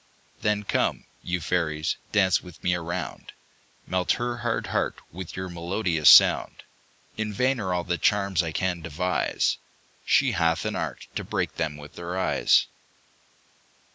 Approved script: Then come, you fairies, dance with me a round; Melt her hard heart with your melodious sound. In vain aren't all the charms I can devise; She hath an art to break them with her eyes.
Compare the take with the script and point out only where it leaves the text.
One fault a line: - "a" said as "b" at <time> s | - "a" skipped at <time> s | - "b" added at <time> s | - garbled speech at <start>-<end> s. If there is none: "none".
- "aren't" said as "are" at 7.6 s